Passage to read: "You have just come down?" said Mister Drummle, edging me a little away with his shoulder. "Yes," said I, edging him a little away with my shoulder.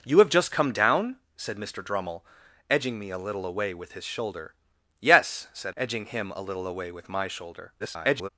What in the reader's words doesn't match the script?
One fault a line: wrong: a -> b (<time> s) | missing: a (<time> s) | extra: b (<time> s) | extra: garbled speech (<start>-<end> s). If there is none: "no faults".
missing: I (5.8 s)
extra: garbled speech (7.8-8.3 s)